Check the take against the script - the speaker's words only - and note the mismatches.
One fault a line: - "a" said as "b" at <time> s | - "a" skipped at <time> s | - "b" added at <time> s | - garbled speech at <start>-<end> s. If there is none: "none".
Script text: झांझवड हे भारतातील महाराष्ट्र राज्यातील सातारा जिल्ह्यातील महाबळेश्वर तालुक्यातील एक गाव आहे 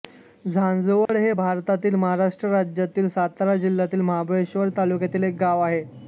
none